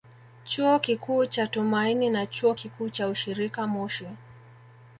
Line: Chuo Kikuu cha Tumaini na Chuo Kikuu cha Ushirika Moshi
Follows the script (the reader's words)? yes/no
yes